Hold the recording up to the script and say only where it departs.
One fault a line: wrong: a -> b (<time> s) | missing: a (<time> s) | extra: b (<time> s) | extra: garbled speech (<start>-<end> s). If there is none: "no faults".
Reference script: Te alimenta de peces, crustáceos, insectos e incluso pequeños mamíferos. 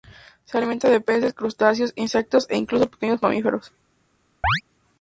wrong: Te -> Se (0.5 s)